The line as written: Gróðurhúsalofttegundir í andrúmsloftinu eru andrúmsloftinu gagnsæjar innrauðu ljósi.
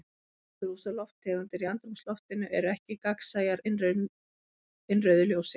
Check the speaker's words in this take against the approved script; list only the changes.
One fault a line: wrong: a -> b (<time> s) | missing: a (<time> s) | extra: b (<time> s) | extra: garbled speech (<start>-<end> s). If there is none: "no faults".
wrong: andrúmsloftinu -> ekki (2.7 s)